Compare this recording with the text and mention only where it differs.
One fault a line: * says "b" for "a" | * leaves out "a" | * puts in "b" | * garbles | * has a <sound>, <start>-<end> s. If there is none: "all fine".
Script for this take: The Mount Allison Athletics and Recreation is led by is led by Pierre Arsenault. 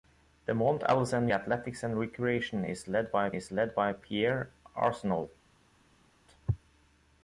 all fine